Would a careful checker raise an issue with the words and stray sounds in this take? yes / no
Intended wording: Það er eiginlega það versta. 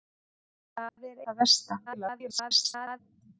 yes